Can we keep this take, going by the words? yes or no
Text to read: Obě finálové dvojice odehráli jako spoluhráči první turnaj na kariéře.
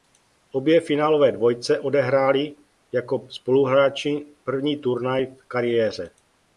no